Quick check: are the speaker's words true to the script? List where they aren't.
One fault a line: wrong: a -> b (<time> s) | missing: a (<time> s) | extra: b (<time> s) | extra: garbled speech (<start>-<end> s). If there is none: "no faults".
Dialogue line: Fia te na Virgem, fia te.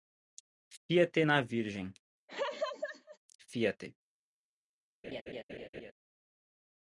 no faults